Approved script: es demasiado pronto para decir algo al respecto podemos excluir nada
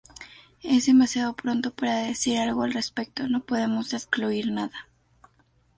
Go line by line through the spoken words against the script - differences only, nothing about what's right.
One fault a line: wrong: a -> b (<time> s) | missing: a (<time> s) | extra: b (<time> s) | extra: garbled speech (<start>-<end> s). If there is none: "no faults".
extra: no (3.3 s)